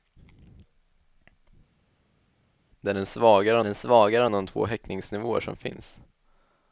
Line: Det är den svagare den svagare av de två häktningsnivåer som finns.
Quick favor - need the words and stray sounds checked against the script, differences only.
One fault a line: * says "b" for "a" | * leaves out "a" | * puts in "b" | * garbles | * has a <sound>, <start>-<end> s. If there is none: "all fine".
all fine